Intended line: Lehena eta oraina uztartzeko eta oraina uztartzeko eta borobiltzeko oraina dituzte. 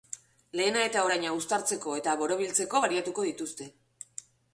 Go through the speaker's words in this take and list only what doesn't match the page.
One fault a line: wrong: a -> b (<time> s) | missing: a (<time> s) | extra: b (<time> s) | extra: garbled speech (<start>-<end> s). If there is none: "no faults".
missing: oraina uztartzeko eta (2.1 s)
wrong: oraina -> baliatuko (2.9 s)